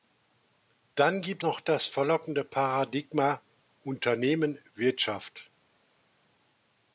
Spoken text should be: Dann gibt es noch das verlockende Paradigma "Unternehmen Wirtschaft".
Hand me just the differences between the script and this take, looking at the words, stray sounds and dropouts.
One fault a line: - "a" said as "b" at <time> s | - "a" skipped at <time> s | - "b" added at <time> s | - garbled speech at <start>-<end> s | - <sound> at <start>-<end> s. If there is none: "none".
- "es" skipped at 1.4 s